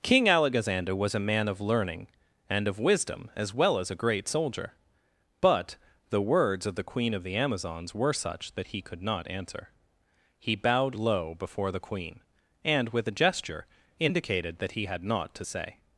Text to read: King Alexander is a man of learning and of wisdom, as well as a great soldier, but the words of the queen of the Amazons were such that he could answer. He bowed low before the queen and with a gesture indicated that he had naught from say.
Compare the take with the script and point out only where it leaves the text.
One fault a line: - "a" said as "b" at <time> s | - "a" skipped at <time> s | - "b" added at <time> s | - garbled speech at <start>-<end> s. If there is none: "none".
- "is" said as "was" at 0.9 s
- "not" added at 9.0 s
- "from" said as "to" at 15.3 s